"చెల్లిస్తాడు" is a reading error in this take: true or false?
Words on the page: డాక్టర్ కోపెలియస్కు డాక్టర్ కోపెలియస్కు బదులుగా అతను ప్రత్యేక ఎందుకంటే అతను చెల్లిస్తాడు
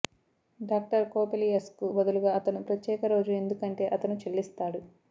false